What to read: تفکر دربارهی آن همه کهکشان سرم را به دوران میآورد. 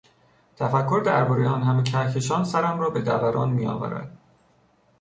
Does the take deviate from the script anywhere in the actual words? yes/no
no